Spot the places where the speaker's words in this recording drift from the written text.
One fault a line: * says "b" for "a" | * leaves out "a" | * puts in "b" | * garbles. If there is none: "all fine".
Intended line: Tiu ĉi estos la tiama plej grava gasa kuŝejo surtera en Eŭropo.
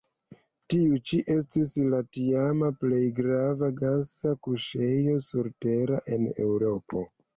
* says "estis" for "estos"